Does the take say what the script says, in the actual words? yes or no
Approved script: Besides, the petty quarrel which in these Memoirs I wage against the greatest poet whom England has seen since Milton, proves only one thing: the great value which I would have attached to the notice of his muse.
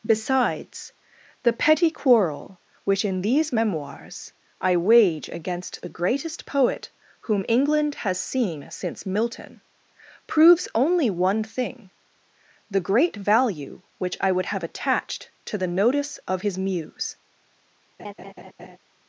yes